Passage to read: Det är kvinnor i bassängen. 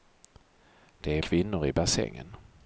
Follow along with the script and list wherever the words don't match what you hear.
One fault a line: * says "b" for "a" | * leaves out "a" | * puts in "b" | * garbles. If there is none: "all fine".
all fine